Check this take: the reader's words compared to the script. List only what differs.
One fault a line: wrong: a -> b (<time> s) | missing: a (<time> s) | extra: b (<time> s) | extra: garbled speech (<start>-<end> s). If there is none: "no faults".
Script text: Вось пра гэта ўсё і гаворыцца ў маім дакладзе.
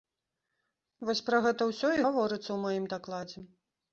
no faults